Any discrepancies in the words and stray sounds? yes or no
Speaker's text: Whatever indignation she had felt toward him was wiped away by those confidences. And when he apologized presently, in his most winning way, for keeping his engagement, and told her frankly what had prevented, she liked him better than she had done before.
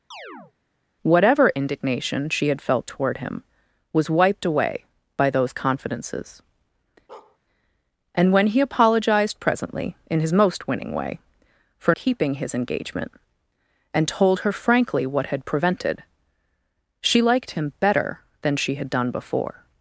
yes